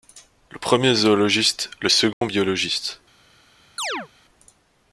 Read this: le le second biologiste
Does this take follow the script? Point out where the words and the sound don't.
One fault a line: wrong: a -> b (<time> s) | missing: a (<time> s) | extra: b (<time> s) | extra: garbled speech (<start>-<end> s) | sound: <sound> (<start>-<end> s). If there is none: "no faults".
extra: premier zoologiste (0.6 s)
sound: dropout (2.1-2.2 s)
sound: chirp (3.8-4.1 s)